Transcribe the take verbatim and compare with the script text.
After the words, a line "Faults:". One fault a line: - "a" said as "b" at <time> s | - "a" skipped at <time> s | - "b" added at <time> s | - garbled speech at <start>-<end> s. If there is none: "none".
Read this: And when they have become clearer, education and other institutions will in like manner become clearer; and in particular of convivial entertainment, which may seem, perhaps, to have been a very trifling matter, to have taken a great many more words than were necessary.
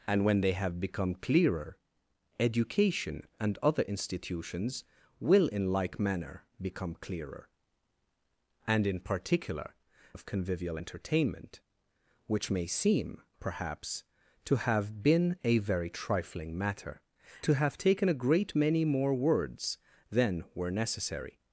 And when they have become clearer, education and other institutions will in like manner become clearer; and in particular of convivial entertainment, which may seem, perhaps, to have been a very trifling matter, to have taken a great many more words than were necessary.
Faults:
none